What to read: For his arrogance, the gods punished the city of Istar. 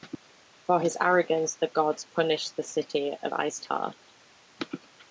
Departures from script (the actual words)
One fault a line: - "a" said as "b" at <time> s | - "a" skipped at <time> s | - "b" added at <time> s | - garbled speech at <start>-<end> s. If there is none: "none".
none